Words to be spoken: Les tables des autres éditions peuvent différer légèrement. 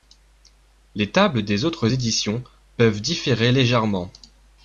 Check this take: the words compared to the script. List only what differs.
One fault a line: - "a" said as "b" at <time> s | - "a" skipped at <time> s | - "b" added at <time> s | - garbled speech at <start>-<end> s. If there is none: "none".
none